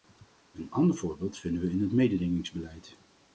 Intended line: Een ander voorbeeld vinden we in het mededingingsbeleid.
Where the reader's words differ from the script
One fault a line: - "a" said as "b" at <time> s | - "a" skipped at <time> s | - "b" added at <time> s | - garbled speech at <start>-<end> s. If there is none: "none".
none